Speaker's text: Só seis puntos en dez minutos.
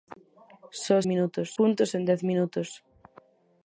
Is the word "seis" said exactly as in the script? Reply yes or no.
no